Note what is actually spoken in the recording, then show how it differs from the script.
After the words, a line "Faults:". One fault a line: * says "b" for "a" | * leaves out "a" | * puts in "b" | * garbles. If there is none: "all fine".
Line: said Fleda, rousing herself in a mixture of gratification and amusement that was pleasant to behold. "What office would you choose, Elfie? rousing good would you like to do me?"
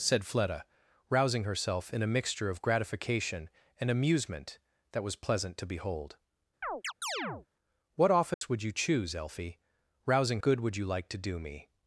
said Fleda, rousing herself in a mixture of gratification and amusement that was pleasant to behold. "What office would you choose, Elfie? rousing good would you like to do me?"
Faults:
all fine